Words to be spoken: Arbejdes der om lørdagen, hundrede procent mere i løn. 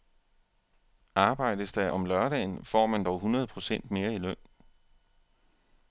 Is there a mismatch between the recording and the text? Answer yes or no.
yes